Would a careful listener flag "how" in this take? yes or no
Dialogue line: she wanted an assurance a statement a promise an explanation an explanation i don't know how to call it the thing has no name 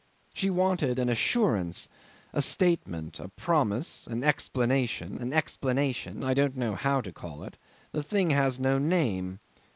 no